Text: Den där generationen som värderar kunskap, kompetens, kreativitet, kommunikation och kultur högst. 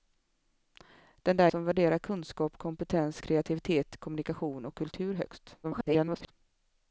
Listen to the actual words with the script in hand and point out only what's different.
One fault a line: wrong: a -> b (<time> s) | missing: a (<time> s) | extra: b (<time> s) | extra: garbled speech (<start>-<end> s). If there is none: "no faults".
missing: generationen (1.5 s)
extra: garbled speech (5.6-6.3 s)